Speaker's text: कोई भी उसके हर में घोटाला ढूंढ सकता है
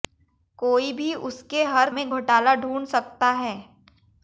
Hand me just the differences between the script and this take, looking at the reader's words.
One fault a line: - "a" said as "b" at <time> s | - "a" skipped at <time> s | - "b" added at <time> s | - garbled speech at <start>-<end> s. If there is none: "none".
none